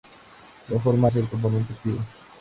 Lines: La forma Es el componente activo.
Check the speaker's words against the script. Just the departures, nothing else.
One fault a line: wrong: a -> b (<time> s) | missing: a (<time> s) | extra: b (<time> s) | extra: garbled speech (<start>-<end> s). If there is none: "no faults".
no faults